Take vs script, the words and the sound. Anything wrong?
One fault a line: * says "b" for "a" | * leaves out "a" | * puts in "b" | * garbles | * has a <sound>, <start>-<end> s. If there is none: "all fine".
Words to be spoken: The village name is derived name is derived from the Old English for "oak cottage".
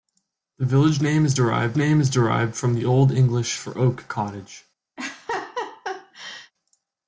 * has a laugh, 5.0-6.5 s